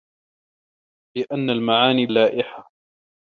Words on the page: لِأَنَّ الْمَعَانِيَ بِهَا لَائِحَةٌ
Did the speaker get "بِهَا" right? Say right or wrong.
wrong